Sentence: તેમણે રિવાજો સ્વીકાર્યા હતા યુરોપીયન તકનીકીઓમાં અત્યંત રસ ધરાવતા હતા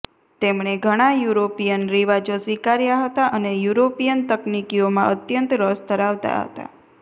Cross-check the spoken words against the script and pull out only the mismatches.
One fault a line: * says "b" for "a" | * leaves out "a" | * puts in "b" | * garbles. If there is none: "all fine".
* puts in "ઘણા યુરોપીયન"
* puts in "અને"